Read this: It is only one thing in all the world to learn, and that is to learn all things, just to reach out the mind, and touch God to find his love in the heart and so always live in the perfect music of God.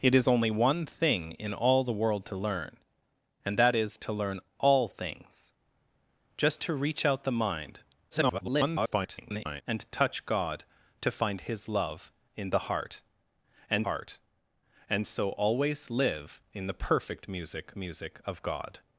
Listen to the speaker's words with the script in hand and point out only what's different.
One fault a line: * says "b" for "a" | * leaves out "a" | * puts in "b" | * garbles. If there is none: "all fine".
* garbles
* puts in "heart and"
* puts in "music"